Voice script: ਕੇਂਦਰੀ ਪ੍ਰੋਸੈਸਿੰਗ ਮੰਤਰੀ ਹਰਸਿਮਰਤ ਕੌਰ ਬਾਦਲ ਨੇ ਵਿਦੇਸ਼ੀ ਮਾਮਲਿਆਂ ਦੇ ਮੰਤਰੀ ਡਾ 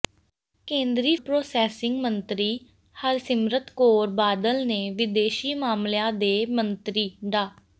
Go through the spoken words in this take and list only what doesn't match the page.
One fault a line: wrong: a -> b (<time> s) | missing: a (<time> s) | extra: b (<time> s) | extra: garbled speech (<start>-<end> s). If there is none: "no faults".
no faults